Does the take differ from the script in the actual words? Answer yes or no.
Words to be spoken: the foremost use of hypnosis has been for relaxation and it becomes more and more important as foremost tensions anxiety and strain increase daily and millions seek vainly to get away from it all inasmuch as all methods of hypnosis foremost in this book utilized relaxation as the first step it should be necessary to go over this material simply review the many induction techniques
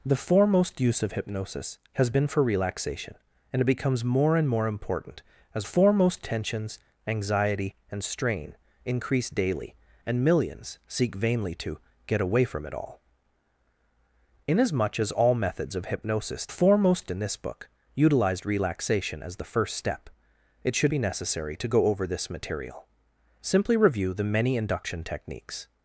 no